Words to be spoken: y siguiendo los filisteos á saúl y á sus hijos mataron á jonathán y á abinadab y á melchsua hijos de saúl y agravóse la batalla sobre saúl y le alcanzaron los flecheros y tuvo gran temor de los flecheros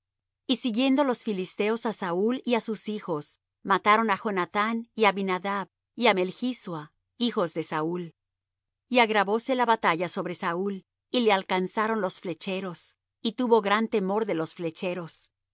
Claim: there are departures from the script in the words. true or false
false